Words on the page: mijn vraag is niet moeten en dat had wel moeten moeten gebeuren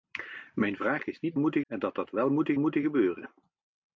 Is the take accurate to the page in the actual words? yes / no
yes